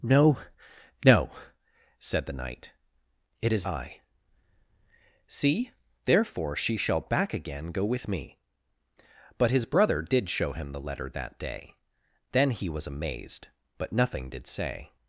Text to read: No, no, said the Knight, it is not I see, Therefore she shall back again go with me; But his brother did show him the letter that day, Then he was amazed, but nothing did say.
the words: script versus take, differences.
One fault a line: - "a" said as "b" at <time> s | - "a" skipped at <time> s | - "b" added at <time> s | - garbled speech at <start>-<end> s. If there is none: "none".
- "not" skipped at 3.7 s